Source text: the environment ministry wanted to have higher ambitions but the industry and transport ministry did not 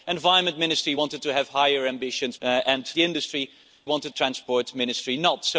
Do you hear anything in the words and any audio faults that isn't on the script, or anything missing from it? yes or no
yes